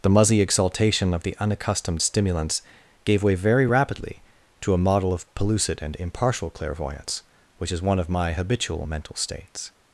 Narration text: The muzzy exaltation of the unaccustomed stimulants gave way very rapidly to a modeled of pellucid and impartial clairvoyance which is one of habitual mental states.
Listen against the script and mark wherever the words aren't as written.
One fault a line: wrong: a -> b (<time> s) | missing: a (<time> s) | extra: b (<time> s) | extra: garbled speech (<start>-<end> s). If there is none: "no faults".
wrong: modeled -> model (4.8 s)
extra: my (8.1 s)